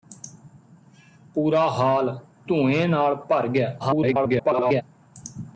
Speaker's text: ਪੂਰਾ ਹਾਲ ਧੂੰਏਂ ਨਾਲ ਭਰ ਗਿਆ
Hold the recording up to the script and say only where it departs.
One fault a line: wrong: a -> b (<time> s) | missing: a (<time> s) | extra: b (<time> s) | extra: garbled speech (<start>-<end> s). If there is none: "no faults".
extra: garbled speech (3.8-4.8 s)